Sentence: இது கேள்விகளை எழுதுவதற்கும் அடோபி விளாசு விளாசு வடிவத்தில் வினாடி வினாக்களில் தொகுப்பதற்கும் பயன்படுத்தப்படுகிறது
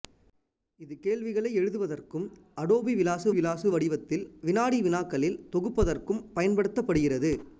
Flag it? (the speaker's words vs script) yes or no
no